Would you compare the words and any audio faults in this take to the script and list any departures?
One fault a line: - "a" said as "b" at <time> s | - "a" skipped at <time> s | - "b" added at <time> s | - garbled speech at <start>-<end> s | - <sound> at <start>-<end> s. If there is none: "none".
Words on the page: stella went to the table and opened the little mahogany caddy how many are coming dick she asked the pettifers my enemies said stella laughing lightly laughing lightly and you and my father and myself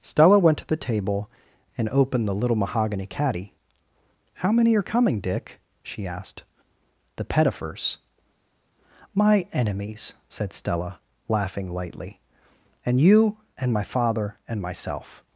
- "laughing lightly" skipped at 12.2 s